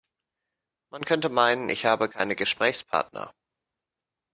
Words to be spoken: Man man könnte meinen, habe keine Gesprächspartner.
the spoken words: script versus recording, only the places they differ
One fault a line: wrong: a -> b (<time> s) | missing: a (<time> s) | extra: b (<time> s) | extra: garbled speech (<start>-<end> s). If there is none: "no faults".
missing: man (1.1 s)
extra: ich (1.7 s)